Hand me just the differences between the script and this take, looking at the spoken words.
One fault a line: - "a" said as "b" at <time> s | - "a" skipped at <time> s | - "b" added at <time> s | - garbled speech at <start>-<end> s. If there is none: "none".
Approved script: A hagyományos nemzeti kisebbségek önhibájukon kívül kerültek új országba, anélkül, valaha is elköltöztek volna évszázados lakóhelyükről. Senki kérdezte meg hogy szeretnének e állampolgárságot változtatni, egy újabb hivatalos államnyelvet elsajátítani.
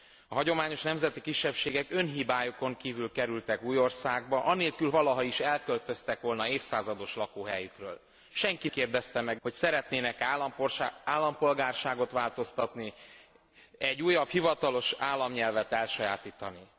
none